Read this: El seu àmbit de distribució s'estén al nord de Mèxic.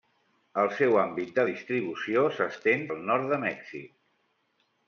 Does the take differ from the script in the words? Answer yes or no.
no